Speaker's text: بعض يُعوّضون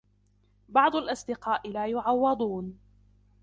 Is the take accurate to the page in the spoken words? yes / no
no